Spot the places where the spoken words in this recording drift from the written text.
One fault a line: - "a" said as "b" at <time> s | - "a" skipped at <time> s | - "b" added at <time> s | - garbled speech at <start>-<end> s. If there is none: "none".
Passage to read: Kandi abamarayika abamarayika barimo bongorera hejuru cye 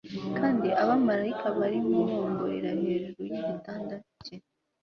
- "abamarayika" skipped at 1.5 s
- "yigitanda" added at 3.3 s